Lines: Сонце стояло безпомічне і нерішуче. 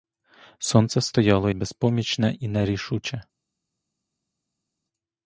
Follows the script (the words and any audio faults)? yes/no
yes